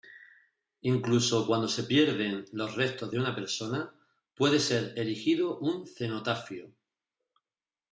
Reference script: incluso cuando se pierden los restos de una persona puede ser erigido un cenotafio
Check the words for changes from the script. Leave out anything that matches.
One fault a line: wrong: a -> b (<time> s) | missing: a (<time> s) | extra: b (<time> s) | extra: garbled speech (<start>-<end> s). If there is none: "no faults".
no faults